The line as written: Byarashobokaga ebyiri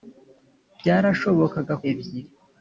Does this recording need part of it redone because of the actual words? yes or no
no